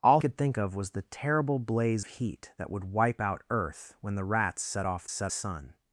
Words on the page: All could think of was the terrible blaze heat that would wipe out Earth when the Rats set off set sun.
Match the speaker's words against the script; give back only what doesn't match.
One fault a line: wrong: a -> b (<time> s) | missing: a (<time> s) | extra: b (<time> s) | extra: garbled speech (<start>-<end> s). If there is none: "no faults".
no faults